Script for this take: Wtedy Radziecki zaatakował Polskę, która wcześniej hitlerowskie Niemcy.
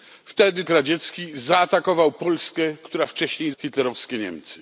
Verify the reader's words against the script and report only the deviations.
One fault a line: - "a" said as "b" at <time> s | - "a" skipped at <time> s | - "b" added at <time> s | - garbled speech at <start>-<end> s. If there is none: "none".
none